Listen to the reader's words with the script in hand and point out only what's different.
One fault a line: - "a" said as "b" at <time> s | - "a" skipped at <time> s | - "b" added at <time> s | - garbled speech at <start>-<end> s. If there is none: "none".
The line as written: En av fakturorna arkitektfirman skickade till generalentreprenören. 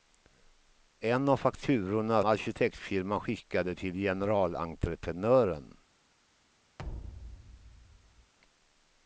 none